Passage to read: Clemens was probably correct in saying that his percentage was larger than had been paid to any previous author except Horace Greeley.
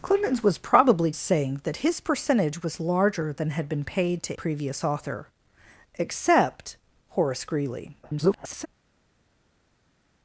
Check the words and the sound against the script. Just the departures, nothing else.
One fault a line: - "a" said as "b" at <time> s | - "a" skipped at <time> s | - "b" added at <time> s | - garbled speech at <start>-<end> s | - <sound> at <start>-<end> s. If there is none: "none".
- "correct in" skipped at 1.1 s
- "any" skipped at 4.4 s
- garbled speech at 8.0-8.7 s